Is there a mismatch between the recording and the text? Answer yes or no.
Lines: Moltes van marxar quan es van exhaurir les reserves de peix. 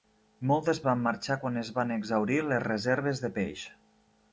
no